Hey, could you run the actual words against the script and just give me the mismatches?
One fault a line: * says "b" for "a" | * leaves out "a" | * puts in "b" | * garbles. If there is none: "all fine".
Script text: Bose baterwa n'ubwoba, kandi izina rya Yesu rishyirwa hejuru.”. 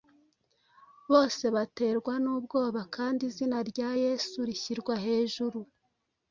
all fine